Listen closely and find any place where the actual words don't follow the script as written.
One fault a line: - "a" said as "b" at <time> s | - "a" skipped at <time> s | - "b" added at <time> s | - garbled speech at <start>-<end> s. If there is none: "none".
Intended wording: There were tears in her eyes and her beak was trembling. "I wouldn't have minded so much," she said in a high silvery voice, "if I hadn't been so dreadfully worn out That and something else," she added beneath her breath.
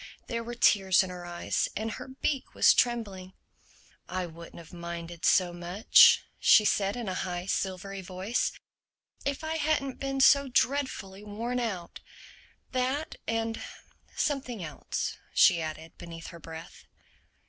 none